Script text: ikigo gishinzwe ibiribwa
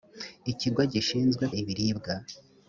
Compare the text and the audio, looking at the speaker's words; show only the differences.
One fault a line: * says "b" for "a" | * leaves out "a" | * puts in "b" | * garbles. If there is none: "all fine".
all fine